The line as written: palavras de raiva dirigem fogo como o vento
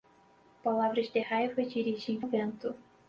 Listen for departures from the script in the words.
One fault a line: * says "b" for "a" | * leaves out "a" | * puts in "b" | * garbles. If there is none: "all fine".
* leaves out "fogo como"